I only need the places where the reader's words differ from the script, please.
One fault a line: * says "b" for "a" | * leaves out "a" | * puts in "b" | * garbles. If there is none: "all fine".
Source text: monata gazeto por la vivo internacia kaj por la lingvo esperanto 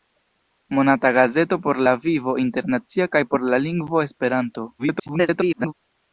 * garbles